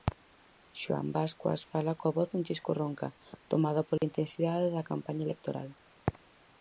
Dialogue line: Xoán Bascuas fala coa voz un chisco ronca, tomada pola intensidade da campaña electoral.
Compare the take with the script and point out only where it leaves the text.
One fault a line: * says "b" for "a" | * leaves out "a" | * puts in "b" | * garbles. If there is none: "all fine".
all fine